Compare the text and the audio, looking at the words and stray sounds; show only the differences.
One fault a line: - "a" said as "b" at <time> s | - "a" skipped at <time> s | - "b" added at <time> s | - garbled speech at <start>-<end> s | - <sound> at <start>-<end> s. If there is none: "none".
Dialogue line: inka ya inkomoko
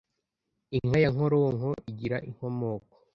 - "nkoronko igira" added at 1.1 s